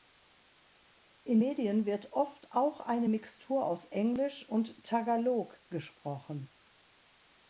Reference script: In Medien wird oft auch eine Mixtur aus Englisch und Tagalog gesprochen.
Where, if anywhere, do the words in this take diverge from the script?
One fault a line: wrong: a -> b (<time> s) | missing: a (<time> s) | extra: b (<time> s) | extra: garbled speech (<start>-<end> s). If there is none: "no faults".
no faults